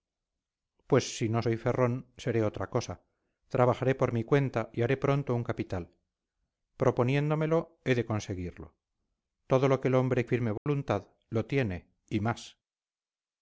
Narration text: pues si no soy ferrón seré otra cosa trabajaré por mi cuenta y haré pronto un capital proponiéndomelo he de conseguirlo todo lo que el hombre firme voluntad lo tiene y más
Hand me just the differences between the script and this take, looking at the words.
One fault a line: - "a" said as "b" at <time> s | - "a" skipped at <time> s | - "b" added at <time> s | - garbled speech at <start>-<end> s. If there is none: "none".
none